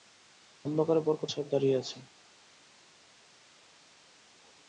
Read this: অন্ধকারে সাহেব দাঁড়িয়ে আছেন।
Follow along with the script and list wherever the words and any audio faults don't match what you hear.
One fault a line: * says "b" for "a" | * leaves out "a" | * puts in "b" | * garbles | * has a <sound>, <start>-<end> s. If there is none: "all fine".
* puts in "বরকত"